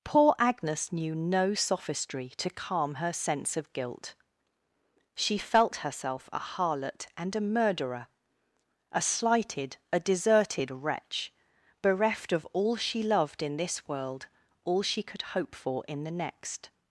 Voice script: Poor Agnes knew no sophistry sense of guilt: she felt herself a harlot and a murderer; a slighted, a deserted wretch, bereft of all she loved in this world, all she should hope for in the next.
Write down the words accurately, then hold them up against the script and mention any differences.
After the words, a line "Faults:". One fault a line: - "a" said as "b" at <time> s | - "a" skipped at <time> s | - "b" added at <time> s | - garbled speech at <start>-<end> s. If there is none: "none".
Poor Agnes knew no sophistry to calm her sense of guilt: she felt herself a harlot and a murderer; a slighted, a deserted wretch, bereft of all she loved in this world, all she could hope for in the next.
Faults:
- "to calm her" added at 2.4 s
- "should" said as "could" at 15.0 s